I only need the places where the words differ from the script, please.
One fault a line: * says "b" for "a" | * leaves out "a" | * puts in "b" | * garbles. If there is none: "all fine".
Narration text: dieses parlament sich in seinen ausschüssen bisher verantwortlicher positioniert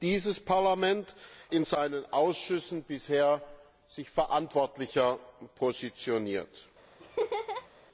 all fine